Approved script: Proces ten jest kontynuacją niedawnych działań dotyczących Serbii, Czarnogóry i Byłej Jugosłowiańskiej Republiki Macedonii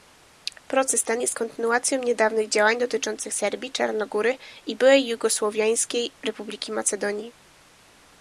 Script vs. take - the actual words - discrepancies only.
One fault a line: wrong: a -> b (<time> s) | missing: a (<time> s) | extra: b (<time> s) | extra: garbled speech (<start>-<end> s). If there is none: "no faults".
no faults